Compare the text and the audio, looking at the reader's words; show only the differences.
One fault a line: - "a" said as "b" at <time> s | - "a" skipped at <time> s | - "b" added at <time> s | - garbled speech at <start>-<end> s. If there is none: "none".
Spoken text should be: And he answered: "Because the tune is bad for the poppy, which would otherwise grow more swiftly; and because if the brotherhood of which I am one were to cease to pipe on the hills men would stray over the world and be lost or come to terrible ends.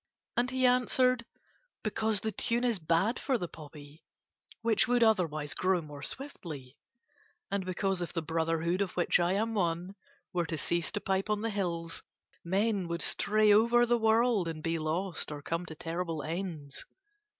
none